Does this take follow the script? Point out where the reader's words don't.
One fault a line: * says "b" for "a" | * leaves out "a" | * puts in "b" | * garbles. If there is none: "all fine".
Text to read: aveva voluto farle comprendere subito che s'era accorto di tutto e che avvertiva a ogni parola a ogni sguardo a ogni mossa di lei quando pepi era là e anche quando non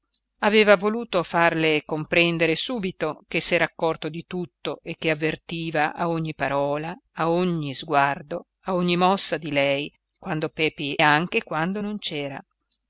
* leaves out "era là e"